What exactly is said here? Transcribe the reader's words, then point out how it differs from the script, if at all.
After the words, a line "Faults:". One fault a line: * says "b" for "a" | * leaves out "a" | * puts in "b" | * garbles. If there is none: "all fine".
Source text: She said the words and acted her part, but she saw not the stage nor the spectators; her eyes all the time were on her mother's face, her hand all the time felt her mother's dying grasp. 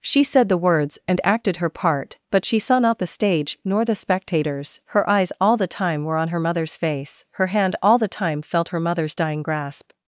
She said the words and acted her part, but she saw not the stage nor the spectators; her eyes all the time were on her mother's face, her hand all the time felt her mother's dying grasp.
Faults:
all fine